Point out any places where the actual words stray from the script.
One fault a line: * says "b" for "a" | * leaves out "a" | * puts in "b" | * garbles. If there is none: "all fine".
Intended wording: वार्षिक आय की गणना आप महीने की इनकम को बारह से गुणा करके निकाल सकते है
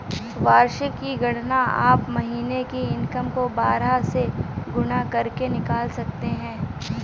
* leaves out "आय"